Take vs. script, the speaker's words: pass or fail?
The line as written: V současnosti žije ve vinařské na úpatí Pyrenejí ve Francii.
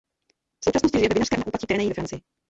pass